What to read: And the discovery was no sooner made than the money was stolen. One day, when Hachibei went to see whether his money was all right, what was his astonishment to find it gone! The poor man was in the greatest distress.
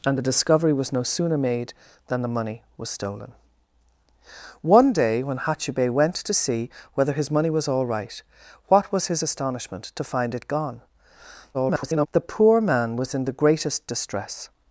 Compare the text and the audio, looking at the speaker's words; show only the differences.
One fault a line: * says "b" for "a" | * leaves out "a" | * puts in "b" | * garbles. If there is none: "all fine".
* garbles